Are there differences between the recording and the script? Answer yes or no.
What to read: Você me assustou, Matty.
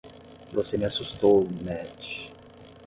no